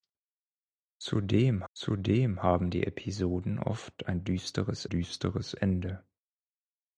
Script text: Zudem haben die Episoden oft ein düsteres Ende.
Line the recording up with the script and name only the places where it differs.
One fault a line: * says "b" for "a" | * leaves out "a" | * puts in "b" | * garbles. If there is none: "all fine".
* puts in "zudem"
* puts in "düsteres"